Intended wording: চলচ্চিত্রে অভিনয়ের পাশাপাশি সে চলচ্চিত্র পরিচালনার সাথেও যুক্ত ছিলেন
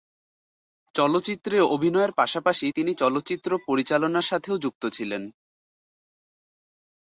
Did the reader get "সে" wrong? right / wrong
wrong